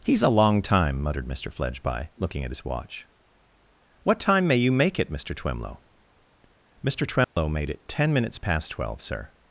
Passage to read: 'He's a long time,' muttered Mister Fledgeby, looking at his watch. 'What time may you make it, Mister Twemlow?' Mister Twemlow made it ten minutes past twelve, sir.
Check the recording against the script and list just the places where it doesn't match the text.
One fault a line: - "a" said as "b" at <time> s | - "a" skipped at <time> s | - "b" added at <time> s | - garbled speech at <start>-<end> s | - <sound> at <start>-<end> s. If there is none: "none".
- dropout at 7.2-7.4 s